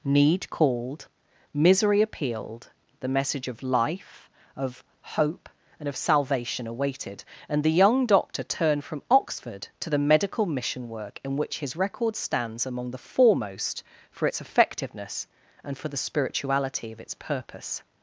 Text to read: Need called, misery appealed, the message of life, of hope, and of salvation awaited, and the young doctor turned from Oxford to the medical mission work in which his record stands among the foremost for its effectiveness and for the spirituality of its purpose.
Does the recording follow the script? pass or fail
pass